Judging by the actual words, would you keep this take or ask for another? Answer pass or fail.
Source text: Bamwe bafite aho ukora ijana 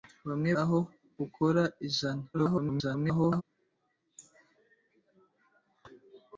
fail